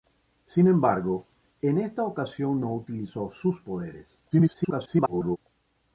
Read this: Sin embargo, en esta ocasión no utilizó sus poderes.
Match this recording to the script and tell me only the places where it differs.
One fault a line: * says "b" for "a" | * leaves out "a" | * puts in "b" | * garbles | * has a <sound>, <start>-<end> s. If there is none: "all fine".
* garbles